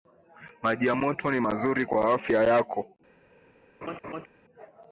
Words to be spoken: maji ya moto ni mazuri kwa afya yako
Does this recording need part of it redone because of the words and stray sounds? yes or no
yes